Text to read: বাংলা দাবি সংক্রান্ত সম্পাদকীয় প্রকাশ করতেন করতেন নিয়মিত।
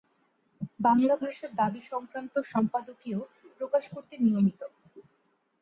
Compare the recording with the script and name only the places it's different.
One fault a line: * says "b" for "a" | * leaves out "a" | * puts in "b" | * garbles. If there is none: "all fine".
* puts in "ভাষার"
* leaves out "করতেন"